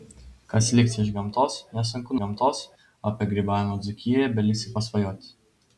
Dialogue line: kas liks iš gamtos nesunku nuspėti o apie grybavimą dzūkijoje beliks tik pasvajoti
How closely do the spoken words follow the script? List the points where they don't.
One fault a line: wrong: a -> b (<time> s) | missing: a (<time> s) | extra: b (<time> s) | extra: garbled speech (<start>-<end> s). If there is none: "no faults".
wrong: nuspėti -> gamtos (2.2 s)